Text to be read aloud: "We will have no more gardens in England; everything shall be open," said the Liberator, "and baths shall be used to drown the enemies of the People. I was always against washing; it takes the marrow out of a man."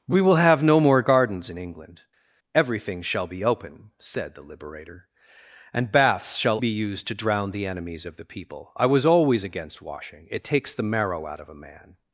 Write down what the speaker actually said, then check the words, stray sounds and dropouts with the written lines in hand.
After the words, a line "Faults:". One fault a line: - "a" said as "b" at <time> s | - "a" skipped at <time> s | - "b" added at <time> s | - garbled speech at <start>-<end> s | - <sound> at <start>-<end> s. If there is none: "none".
"We will have no more gardens in England; everything shall be open," said the Liberator, "and baths shall be used to drown the enemies of the People. I was always against washing; it takes the marrow out of a man."
Faults:
none